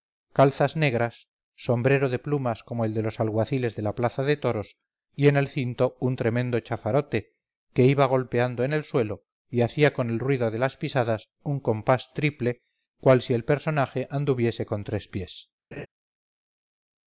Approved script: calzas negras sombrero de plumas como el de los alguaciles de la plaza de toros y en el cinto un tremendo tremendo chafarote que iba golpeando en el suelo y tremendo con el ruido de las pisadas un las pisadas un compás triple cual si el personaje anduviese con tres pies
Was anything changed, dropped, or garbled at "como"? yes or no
no